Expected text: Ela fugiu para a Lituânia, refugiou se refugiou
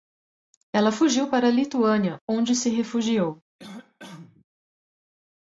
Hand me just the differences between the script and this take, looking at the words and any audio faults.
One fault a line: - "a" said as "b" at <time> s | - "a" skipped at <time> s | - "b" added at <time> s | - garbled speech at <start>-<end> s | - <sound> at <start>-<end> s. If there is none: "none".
- "refugiou" said as "onde" at 2.3 s
- cough at 3.6-4.4 s